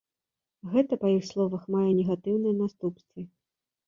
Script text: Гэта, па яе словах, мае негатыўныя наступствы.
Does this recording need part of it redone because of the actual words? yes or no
yes